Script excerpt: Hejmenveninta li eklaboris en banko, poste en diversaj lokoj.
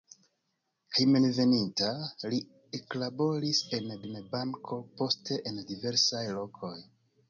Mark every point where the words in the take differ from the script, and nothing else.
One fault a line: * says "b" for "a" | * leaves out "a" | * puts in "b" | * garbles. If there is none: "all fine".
* puts in "en"